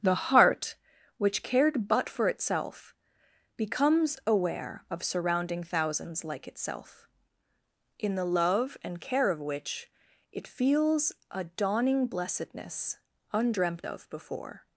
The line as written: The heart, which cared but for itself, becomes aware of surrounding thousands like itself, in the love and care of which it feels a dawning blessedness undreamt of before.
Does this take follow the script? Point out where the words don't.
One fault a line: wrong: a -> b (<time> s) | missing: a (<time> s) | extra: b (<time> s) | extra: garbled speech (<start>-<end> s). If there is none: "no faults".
no faults